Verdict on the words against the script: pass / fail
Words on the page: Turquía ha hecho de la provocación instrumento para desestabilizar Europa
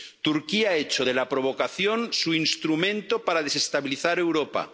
fail